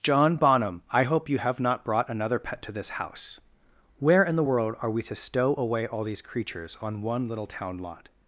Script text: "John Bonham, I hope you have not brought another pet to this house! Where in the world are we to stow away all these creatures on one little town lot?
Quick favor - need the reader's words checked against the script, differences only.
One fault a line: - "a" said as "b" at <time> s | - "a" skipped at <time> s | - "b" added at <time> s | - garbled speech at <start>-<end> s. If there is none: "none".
none